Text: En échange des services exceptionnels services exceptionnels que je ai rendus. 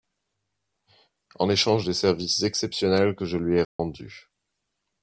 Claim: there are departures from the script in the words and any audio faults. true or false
true